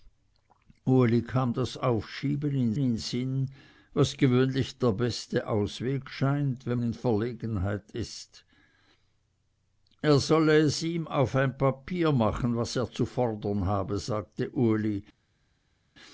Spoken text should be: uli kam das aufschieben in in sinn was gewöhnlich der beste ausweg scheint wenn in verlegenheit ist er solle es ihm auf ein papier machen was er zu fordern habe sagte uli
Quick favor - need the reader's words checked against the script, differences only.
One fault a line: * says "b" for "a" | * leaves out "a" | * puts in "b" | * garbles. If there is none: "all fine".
all fine